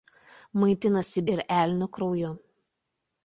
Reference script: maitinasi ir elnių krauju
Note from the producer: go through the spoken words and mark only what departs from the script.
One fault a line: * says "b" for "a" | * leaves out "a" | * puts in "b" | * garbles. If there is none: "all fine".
all fine